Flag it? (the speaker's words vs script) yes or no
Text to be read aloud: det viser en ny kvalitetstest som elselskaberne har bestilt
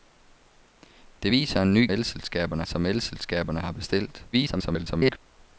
yes